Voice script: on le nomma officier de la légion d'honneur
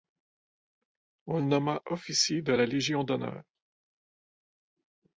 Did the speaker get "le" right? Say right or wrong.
right